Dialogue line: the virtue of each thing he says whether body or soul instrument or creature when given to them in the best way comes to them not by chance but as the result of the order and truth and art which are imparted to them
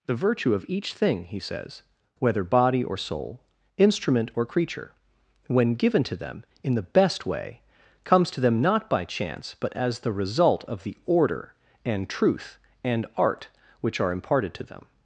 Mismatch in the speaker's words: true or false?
false